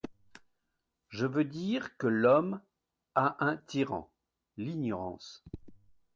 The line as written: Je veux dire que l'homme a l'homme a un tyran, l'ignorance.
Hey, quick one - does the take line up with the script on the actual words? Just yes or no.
no